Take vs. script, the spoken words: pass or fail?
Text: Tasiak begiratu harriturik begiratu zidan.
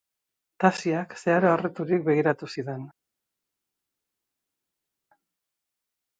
fail